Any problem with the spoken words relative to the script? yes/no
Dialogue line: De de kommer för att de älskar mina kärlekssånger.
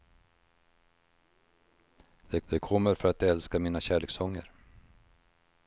no